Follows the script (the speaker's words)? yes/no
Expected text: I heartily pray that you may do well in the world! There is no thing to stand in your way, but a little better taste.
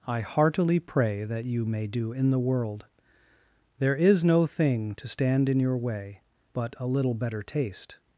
no